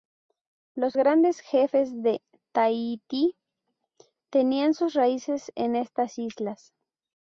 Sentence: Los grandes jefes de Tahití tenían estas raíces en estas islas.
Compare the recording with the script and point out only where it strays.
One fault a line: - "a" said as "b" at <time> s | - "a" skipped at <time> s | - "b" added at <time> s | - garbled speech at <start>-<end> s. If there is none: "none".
- "estas" said as "sus" at 4.7 s